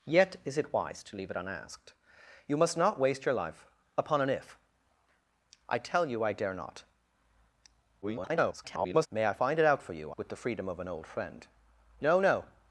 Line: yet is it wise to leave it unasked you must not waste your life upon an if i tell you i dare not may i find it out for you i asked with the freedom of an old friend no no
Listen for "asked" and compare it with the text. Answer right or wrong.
wrong